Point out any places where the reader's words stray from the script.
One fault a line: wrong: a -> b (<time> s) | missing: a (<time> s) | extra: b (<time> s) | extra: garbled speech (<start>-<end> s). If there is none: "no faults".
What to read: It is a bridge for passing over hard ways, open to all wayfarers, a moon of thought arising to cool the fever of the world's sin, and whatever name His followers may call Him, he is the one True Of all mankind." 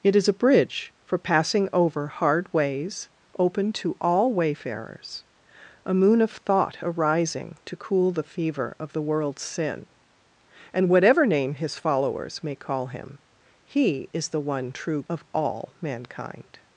no faults